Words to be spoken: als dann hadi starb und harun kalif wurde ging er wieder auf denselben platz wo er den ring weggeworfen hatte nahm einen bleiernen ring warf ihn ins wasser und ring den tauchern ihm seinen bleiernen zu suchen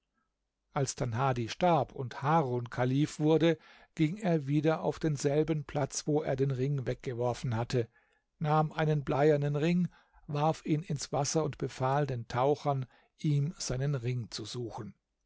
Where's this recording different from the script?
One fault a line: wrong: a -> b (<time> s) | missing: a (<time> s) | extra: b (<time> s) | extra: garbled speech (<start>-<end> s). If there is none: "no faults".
wrong: ring -> befahl (11.6 s)
wrong: bleiernen -> ring (13.9 s)